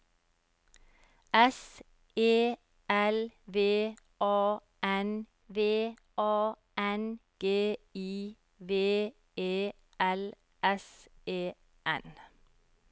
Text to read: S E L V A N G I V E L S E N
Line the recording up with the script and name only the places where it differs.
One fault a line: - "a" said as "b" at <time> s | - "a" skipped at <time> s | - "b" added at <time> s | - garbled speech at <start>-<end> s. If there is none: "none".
- "V A N" added at 5.5 s